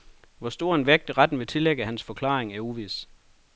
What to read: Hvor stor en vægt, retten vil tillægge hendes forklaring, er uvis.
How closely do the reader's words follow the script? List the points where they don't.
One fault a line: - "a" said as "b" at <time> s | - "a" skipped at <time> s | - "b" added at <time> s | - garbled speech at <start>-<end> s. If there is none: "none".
- "hendes" said as "hans" at 1.8 s